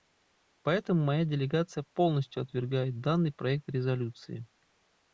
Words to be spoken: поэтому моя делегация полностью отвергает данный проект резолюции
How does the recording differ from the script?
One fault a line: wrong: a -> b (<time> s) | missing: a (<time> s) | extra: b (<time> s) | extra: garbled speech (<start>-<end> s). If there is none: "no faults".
no faults